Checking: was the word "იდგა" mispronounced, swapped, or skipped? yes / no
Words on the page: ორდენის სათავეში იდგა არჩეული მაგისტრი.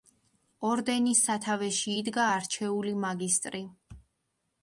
no